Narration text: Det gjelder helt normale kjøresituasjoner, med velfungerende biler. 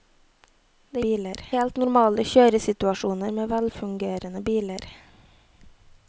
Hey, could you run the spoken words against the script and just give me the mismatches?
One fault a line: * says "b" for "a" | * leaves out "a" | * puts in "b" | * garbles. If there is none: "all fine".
* says "biler" for "gjelder"